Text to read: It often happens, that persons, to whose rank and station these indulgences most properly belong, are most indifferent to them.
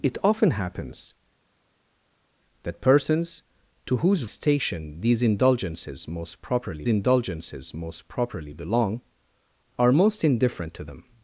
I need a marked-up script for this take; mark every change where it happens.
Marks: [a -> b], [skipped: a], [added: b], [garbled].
It often happens, that persons, to whose [rank and station these -> station these indulgences most properly] indulgences most properly belong, are most indifferent to them.